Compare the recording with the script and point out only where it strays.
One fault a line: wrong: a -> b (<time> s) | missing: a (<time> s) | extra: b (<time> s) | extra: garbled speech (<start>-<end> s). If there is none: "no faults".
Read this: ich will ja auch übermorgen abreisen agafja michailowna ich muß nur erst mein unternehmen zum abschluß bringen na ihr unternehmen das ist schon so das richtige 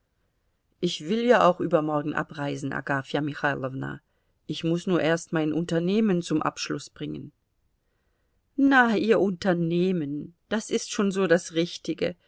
no faults